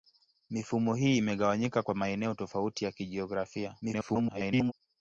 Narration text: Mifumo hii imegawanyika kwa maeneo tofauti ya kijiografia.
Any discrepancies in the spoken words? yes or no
yes